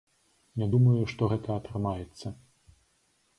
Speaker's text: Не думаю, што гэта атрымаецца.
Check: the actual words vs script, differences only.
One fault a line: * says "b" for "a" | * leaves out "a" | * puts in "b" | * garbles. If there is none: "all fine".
all fine